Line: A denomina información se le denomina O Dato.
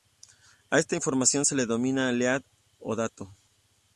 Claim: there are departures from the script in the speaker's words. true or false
true